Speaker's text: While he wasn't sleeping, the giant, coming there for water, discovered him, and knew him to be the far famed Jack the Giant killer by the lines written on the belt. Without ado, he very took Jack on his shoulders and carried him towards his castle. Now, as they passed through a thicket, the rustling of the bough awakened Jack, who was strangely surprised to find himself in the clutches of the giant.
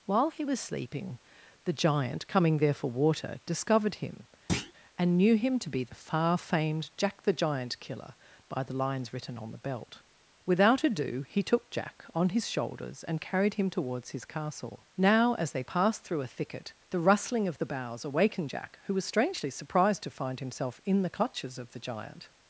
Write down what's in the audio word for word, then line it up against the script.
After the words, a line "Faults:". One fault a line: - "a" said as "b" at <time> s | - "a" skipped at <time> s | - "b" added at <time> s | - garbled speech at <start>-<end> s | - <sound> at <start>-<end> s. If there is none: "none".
While he was sleeping, the giant, coming there for water, discovered him, and knew him to be the far famed Jack the Giant killer by the lines written on the belt. Without ado, he took Jack on his shoulders and carried him towards his castle. Now, as they passed through a thicket, the rustling of the boughs awakened Jack, who was strangely surprised to find himself in the clutches of the giant.
Faults:
- "wasn't" said as "was" at 0.4 s
- thud at 4.5-4.7 s
- "very" skipped at 11.4 s
- "bough" said as "boughs" at 17.6 s